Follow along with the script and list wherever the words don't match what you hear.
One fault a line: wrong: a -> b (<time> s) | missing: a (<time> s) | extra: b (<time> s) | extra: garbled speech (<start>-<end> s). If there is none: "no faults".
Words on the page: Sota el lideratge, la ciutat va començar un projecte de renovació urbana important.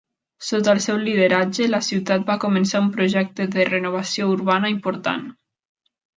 extra: seu (0.8 s)